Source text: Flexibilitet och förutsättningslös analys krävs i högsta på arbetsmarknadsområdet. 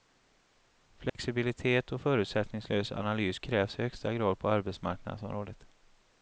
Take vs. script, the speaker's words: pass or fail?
fail